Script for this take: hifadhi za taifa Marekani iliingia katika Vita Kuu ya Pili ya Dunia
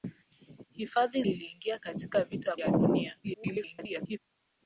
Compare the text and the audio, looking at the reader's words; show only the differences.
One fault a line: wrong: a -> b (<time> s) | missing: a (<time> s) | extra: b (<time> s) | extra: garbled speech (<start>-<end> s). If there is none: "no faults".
missing: za taifa Marekani (1.2 s)
missing: Kuu ya Pili (2.6 s)
extra: garbled speech (3.2-4.2 s)